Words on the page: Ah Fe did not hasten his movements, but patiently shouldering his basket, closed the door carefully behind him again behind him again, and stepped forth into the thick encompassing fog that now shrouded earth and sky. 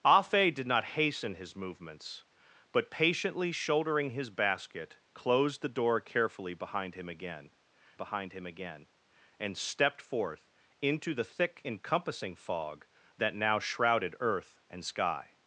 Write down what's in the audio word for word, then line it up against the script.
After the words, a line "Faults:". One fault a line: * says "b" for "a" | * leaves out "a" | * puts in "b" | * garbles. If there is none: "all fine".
Ah Fe did not hasten his movements, but patiently shouldering his basket, closed the door carefully behind him again behind him again, and stepped forth into the thick encompassing fog that now shrouded earth and sky.
Faults:
all fine